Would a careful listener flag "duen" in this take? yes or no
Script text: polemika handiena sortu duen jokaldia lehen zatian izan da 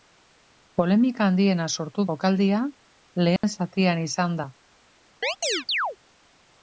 yes